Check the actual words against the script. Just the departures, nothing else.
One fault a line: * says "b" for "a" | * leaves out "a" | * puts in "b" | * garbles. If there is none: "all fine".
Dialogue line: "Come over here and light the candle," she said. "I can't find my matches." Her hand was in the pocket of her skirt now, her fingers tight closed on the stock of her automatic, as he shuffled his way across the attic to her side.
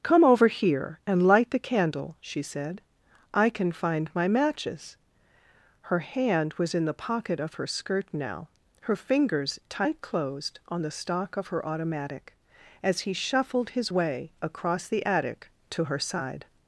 * says "can" for "can't"